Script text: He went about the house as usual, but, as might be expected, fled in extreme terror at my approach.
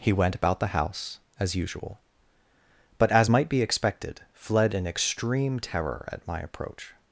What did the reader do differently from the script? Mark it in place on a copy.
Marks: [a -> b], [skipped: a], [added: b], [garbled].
He went about the house as usual, but, as might be expected, fled in extreme terror at my approach.